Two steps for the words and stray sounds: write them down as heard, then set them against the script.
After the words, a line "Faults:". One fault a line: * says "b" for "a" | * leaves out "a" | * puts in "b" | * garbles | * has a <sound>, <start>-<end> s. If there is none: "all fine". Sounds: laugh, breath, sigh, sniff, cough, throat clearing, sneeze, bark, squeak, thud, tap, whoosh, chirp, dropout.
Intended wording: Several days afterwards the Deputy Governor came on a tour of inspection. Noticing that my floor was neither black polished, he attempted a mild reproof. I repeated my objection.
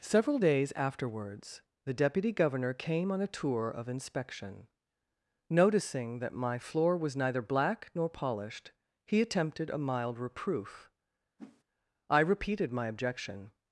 Several days afterwards the Deputy Governor came on a tour of inspection. Noticing that my floor was neither black nor polished, he attempted a mild reproof. I repeated my objection.
Faults:
* puts in "nor"
* has a whoosh, 11.4-11.6 s